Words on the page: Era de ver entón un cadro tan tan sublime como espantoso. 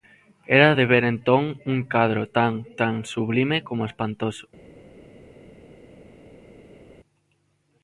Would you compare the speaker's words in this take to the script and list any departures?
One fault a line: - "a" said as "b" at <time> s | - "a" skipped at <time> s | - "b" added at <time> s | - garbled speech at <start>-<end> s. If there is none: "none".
none